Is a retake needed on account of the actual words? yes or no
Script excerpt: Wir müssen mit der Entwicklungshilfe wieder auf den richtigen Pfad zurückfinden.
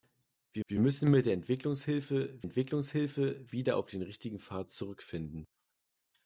yes